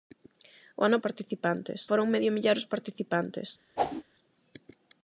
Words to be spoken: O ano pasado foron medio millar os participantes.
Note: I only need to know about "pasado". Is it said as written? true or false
false